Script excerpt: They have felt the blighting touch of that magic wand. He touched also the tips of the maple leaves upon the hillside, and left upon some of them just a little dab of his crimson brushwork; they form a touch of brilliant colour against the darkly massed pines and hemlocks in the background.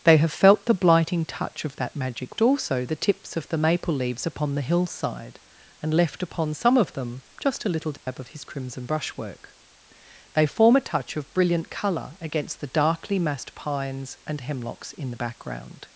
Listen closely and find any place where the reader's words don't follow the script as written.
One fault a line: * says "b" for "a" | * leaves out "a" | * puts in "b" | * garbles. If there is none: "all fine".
* leaves out "wand He touched"